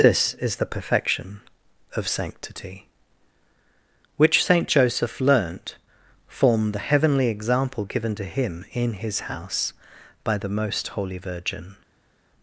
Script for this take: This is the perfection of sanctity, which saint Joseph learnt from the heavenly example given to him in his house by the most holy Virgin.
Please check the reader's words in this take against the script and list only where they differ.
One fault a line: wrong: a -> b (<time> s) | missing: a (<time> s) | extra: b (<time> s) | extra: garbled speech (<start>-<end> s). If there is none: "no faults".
wrong: from -> form (6.3 s)